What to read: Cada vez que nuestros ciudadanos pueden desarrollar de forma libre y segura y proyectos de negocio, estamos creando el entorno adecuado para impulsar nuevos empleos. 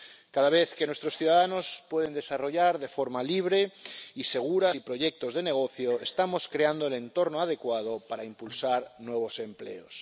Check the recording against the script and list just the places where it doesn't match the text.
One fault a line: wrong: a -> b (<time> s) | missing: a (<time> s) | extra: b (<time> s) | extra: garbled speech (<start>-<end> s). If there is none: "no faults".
no faults